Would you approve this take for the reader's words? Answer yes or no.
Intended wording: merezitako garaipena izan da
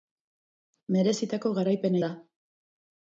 no